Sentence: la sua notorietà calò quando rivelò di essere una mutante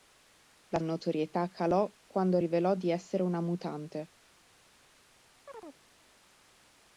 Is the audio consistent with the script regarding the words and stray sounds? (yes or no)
no